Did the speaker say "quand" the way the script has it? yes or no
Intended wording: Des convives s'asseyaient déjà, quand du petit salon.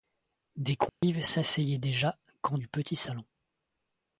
yes